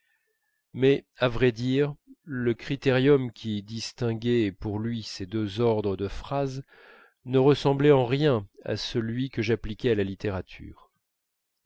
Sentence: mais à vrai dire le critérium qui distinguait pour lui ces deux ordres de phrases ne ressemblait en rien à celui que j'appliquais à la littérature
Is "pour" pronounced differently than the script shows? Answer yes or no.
no